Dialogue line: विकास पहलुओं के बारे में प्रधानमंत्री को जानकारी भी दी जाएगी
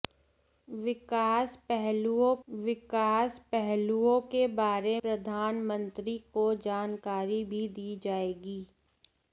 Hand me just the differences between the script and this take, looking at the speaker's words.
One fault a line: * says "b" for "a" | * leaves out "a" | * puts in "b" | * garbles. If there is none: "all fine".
* puts in "विकास पहलुओं"
* leaves out "में"